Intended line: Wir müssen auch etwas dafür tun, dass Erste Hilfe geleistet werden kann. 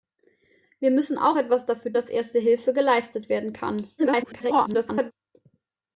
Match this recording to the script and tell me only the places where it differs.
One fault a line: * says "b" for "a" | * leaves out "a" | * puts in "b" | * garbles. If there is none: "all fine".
* leaves out "tun"
* garbles